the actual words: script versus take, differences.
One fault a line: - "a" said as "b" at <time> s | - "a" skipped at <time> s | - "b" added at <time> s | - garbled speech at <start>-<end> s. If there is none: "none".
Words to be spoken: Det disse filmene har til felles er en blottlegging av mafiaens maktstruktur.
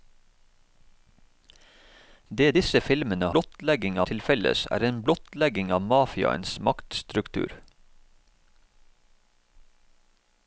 - "har" said as "blottlegging" at 3.4 s